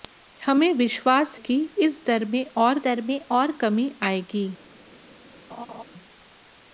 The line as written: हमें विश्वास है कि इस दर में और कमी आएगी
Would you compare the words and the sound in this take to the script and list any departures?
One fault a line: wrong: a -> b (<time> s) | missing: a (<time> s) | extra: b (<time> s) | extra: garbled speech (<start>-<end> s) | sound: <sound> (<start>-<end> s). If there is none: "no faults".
missing: है (1.4 s)
extra: दर में और (2.8 s)
sound: laugh (5.5-5.8 s)